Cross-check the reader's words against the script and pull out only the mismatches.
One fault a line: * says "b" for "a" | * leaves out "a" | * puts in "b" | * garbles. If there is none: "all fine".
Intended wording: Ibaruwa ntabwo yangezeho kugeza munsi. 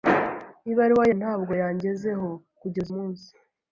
all fine